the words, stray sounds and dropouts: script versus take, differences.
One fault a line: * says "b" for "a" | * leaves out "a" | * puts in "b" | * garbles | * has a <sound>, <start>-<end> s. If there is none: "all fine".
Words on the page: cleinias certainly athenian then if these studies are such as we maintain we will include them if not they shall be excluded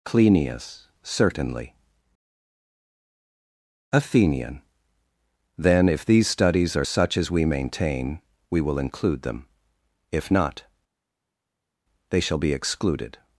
all fine